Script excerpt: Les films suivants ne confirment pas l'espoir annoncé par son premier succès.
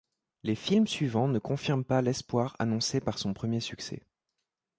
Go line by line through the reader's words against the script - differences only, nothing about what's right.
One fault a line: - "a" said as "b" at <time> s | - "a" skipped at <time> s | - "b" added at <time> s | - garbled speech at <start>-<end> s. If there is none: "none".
none